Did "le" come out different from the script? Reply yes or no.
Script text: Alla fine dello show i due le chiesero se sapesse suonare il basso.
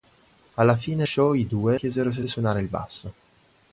yes